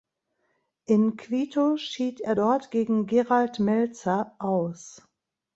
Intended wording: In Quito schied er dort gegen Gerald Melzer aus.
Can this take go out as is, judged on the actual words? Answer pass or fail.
pass